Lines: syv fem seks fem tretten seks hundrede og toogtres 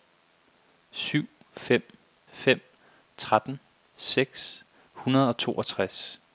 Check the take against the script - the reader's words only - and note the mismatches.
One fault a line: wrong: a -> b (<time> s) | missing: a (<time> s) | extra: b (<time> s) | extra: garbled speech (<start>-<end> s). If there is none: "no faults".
missing: seks (2.0 s)